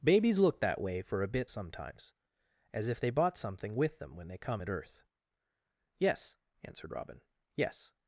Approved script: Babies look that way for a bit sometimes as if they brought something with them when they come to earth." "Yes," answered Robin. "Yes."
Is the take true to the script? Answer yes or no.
no